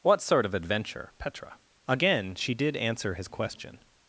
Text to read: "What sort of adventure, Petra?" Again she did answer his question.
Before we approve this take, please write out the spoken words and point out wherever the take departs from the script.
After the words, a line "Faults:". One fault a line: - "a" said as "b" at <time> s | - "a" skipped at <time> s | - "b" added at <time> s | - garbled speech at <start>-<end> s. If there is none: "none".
"What sort of adventure, Petra?" Again she did answer his question.
Faults:
none